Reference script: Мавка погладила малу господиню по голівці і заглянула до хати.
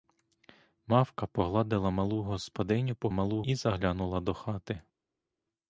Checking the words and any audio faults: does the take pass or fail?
fail